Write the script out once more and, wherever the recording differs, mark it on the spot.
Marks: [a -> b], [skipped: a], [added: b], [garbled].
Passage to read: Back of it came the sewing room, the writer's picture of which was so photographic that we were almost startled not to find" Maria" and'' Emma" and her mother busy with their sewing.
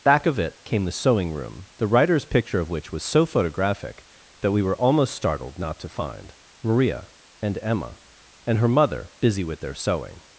Back of it came the sewing room, the writer's picture of which was so photographic that we were almost startled not to find" Maria" and'' Emma" and her mother busy with their sewing.